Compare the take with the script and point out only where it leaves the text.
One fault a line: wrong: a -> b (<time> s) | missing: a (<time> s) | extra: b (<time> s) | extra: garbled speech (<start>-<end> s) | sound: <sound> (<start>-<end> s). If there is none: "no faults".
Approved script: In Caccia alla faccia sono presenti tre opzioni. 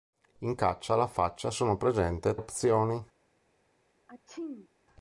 missing: tre (2.3 s)
sound: sneeze (4.1-4.7 s)